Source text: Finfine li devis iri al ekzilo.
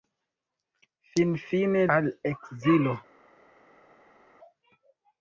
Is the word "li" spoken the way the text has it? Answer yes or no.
no